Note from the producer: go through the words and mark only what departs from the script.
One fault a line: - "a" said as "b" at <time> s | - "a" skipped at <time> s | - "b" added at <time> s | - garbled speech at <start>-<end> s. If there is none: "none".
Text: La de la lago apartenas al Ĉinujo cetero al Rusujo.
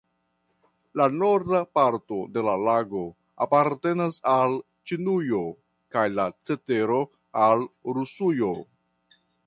- "norda parto" added at 1.2 s
- "kaj la" added at 6.0 s